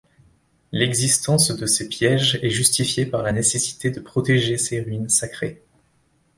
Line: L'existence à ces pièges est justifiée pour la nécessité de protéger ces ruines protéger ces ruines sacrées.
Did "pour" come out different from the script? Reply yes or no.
yes